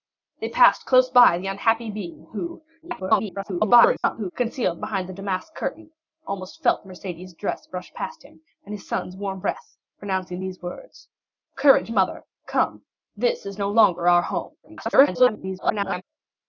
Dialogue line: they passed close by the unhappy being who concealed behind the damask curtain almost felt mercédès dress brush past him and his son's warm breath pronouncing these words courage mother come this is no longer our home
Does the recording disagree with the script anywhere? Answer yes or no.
yes